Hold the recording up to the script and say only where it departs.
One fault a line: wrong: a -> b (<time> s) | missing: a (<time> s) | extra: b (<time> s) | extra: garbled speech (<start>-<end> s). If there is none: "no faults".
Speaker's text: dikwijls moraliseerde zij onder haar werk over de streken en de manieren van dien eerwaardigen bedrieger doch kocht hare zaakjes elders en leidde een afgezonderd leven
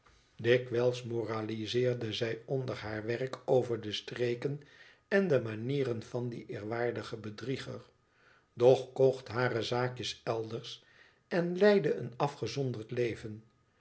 no faults